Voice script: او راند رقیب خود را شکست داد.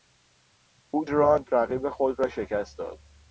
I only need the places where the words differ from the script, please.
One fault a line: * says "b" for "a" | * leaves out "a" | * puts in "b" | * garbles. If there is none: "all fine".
all fine